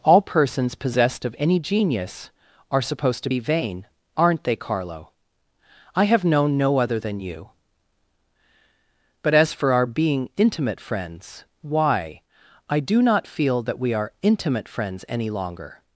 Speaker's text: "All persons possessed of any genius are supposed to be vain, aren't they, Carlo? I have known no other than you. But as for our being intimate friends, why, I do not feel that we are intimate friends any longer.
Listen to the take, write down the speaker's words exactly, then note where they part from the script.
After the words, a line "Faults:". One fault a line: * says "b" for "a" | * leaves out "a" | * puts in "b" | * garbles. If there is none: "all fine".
"All persons possessed of any genius are supposed to be vain, aren't they, Carlo? I have known no other than you. But as for our being intimate friends, why, I do not feel that we are intimate friends any longer.
Faults:
all fine